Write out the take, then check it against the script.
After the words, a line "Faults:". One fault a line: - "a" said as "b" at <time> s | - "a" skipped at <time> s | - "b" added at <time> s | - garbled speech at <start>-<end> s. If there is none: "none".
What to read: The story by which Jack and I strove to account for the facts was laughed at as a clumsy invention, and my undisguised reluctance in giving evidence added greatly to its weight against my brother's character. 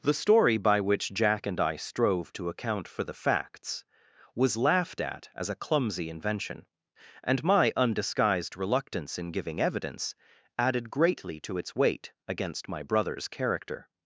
The story by which Jack and I strove to account for the facts was laughed at as a clumsy invention, and my undisguised reluctance in giving evidence added greatly to its weight against my brother's character.
Faults:
none